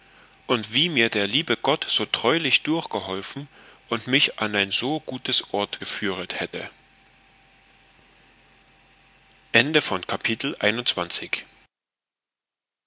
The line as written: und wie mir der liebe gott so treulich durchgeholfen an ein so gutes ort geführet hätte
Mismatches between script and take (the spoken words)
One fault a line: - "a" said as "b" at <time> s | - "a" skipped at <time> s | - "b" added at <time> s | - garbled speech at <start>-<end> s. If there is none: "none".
- "und mich" added at 3.9 s